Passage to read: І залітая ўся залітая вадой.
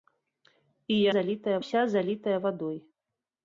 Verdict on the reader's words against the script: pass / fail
pass